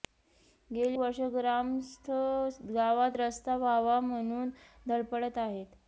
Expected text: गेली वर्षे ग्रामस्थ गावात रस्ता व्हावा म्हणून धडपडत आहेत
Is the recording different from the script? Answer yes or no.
no